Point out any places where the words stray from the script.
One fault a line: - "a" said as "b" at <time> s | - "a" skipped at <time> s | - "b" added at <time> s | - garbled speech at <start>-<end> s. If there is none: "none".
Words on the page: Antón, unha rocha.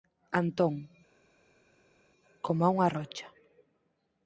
- "coma" added at 2.4 s